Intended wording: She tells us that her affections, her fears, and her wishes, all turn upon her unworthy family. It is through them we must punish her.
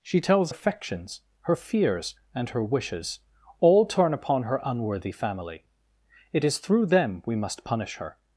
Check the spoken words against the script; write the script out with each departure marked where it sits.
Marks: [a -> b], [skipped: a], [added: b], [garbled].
She tells [skipped: us that her] affections, her fears, and her wishes, all turn upon her unworthy family. It is through them we must punish her.